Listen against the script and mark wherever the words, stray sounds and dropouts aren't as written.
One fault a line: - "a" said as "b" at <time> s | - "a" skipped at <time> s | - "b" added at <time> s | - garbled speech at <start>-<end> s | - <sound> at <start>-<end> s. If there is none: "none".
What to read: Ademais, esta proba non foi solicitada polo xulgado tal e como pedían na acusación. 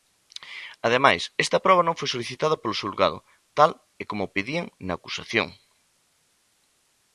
none